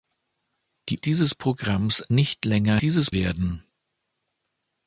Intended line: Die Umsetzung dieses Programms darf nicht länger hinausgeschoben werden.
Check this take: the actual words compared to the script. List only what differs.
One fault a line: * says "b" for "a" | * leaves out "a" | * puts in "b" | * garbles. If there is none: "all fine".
* leaves out "Umsetzung"
* leaves out "darf"
* says "dieses" for "hinausgeschoben"